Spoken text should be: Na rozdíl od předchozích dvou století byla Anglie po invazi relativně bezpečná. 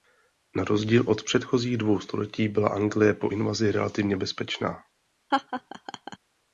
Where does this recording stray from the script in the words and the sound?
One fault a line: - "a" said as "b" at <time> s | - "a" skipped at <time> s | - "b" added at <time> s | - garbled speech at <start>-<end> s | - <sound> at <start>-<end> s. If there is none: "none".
- laugh at 5.3-6.2 s